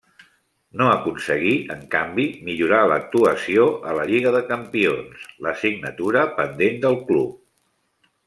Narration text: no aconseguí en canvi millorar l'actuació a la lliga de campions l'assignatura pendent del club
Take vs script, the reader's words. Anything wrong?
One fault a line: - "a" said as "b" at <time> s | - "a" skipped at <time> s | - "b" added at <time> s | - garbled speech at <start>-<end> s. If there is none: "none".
none